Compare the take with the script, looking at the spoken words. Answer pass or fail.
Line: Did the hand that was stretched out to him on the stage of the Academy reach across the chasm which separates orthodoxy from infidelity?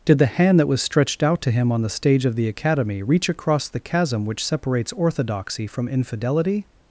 pass